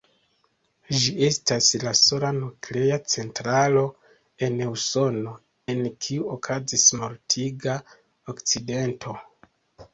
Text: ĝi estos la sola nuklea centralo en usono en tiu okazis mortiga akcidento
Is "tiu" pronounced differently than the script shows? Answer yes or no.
yes